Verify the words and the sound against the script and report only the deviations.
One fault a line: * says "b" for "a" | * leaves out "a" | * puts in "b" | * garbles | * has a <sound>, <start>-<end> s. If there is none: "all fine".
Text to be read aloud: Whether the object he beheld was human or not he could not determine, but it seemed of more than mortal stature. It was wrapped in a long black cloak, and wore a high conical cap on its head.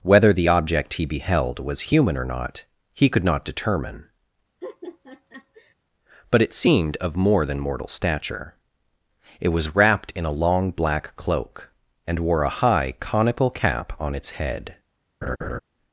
* has a laugh, 4.6-5.7 s
* has a laugh, 15.2-15.6 s